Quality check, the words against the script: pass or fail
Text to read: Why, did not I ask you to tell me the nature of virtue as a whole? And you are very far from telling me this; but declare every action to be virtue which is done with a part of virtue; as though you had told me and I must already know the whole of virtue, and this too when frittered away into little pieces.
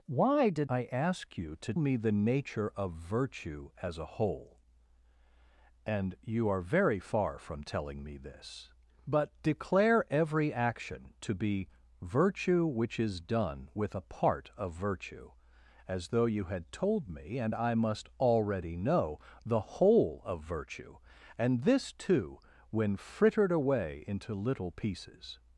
fail